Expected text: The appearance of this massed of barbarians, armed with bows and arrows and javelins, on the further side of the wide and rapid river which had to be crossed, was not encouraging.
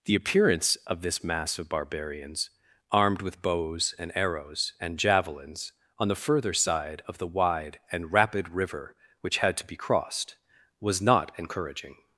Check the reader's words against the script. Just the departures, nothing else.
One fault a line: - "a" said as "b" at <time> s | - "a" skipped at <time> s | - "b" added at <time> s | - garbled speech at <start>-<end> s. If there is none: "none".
- "massed" said as "mass" at 1.2 s